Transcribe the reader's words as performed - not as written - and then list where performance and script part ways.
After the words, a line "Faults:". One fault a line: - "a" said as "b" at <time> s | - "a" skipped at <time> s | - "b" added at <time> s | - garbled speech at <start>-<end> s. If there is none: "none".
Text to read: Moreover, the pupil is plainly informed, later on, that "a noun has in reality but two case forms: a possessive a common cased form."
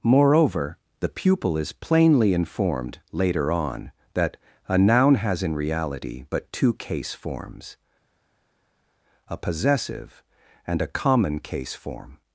Moreover, the pupil is plainly informed, later on, that "a noun has in reality but two case forms: a possessive and a common case form."
Faults:
- "and" added at 10.7 s
- "cased" said as "case" at 11.4 s